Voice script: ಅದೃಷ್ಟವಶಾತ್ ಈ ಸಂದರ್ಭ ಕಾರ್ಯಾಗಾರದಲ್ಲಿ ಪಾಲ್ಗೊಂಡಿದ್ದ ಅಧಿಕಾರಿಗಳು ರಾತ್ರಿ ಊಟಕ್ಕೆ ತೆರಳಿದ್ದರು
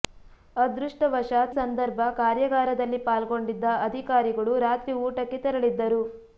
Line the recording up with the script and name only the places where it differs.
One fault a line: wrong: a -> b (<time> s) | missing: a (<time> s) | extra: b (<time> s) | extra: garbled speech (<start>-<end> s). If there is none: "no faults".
missing: ಈ (1.5 s)